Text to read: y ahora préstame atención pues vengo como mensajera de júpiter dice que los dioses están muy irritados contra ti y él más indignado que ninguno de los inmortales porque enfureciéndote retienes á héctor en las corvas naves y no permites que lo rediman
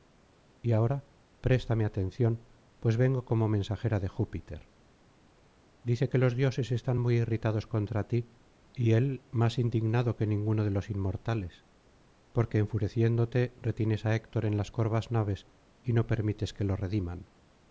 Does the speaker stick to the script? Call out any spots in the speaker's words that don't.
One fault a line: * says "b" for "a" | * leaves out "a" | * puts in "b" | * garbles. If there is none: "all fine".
all fine